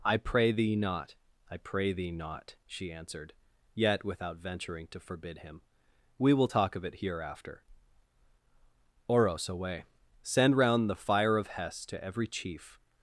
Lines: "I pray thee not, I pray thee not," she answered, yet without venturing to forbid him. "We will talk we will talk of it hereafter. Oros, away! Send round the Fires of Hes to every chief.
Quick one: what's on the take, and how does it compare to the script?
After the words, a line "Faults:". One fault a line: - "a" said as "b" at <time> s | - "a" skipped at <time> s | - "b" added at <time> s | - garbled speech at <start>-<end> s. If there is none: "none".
"I pray thee not, I pray thee not," she answered, yet without venturing to forbid him. "We will talk of it hereafter. Oros, away! Send round the Fire of Hes to every chief.
Faults:
- "we will talk" skipped at 6.7 s
- "Fires" said as "Fire" at 10.9 s